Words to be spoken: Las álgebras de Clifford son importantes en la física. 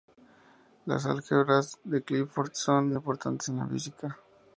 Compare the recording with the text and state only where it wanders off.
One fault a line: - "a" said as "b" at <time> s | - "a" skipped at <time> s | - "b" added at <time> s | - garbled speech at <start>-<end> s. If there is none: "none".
none